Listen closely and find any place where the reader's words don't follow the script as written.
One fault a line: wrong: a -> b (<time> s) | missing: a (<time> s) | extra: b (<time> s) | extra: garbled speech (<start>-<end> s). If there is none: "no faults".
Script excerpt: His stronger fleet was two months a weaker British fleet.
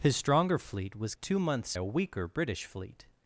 no faults